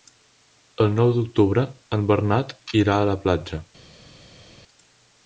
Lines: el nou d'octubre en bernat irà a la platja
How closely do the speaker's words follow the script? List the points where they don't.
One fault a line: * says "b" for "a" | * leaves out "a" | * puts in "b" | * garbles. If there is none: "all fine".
all fine